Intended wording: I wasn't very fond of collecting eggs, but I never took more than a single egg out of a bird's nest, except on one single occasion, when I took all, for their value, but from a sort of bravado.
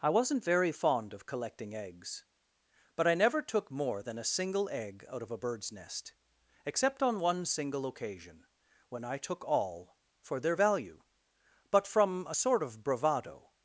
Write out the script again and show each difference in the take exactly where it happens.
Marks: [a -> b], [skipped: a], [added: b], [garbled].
I wasn't very fond of collecting eggs, but I never took more than a single egg out of a bird's nest, except on one single occasion, when I took all, for their value, but from a sort of bravado.